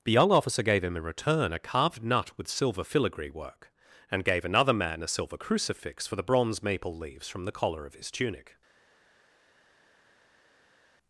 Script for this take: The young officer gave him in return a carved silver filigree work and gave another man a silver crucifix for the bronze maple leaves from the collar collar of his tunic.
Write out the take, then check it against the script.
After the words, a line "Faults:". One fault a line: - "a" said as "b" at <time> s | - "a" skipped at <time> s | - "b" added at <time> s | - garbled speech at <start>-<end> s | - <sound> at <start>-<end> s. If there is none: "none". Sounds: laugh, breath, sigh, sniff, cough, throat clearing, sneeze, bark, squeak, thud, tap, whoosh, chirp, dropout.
The young officer gave him in return a carved nut with silver filigree work and gave another man a silver crucifix for the bronze maple leaves from the collar of his tunic.
Faults:
- "nut with" added at 2.0 s
- "collar" skipped at 7.9 s